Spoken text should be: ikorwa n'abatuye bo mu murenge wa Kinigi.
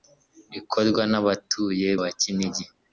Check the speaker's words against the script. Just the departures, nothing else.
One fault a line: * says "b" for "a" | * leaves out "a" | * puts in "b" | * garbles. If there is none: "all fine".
* leaves out "bo mu murenge"